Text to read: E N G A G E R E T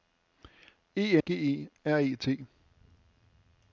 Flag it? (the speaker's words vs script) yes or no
yes